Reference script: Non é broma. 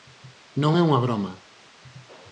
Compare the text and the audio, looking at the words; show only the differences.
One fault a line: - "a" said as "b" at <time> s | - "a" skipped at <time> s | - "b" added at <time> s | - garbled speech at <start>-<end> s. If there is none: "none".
- "unha" added at 0.9 s